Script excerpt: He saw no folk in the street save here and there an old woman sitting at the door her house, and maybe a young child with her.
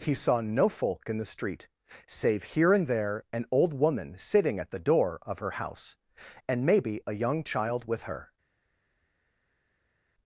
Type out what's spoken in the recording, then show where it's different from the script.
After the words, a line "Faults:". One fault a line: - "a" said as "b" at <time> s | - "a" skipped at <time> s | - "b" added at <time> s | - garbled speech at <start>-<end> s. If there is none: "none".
He saw no folk in the street save here and there an old woman sitting at the door of her house, and maybe a young child with her.
Faults:
- "of" added at 5.2 s